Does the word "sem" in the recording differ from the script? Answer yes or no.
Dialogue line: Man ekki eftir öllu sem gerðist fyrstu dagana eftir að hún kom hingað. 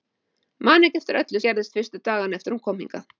yes